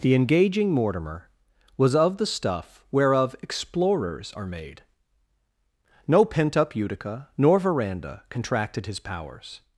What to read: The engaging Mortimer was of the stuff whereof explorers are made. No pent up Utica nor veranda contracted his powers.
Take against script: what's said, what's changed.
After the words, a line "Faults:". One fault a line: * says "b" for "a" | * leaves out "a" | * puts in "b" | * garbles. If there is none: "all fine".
The engaging Mortimer was of the stuff whereof explorers are made. No pent up Utica nor veranda contracted his powers.
Faults:
all fine